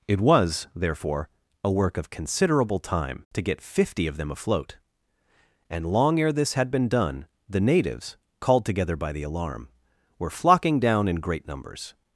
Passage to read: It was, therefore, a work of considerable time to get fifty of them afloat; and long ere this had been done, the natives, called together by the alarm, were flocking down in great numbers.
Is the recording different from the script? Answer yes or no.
no